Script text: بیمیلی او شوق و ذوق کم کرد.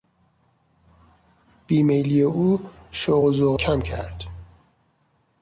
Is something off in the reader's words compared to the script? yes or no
no